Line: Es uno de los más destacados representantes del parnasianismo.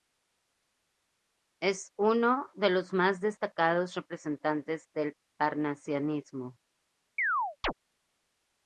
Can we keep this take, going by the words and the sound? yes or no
no